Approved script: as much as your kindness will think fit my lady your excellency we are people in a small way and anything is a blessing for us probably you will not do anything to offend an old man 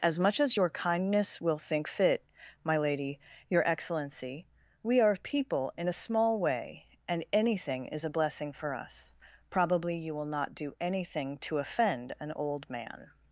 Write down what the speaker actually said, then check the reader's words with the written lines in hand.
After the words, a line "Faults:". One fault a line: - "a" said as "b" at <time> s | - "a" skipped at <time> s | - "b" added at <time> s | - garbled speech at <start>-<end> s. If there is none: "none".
as much as your kindness will think fit my lady your excellency we are people in a small way and anything is a blessing for us probably you will not do anything to offend an old man
Faults:
none